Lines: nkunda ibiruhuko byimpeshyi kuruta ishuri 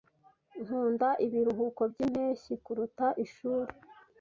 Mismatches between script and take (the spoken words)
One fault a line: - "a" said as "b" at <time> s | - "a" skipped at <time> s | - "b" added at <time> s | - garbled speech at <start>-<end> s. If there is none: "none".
none